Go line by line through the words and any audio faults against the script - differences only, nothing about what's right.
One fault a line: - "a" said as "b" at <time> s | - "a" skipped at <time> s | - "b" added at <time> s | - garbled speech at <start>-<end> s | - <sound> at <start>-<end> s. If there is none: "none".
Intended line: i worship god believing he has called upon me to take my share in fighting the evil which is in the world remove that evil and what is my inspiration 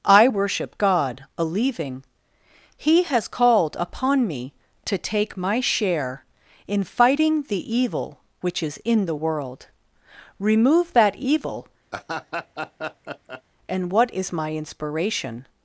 - "believing" said as "a leaving" at 1.4 s
- laugh at 11.9-13.4 s